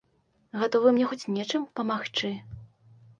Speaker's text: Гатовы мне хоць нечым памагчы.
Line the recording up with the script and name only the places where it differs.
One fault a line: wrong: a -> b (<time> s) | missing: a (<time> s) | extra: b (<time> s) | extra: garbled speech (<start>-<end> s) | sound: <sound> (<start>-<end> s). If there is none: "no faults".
no faults